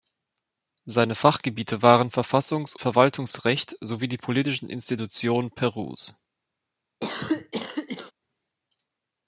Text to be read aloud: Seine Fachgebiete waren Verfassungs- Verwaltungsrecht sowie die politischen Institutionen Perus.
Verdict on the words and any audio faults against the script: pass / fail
fail